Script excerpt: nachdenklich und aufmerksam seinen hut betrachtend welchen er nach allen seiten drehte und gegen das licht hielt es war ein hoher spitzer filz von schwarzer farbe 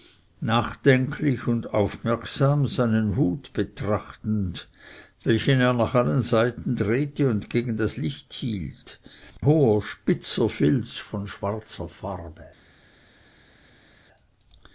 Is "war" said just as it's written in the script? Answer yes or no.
no